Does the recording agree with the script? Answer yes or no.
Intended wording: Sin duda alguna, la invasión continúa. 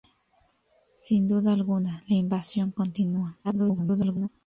no